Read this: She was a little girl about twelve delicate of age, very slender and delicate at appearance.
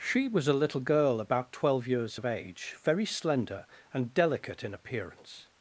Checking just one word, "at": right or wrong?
wrong